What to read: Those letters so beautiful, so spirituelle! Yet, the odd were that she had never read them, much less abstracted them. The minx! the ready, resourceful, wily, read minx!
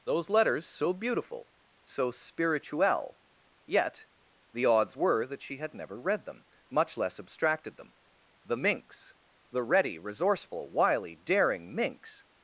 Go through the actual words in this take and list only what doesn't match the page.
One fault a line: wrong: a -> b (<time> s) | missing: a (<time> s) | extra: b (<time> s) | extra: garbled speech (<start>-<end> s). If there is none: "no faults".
wrong: odd -> odds (4.6 s)
wrong: read -> daring (11.1 s)